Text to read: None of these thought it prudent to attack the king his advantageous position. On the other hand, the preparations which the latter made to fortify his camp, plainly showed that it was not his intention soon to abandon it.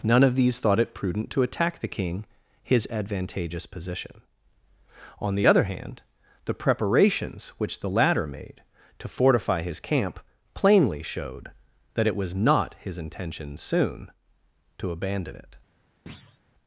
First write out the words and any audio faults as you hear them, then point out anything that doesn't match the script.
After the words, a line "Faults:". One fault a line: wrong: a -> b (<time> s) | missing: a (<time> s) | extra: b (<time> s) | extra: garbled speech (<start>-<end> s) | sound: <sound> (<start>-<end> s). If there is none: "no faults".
None of these thought it prudent to attack the king his advantageous position. On the other hand, the preparations which the latter made to fortify his camp, plainly showed that it was not his intention soon to abandon it.
Faults:
sound: thud (16.1-16.4 s)